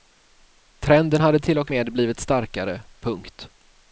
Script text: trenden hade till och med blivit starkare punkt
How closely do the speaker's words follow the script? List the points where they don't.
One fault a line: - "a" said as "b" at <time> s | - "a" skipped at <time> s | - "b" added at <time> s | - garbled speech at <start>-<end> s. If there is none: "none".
none